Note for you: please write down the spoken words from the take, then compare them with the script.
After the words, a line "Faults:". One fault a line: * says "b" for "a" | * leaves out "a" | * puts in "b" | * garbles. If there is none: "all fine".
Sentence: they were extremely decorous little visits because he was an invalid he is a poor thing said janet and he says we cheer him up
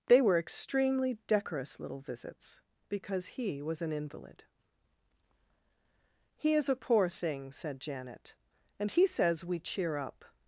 they were extremely decorous little visits because he was an invalid he is a poor thing said janet and he says we cheer up
Faults:
* leaves out "him"